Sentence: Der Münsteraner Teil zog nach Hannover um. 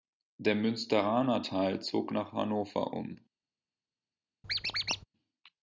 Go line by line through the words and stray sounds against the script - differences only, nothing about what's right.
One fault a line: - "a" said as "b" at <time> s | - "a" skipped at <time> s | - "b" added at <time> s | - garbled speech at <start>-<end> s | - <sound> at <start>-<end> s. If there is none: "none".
- squeak at 4.4-5.0 s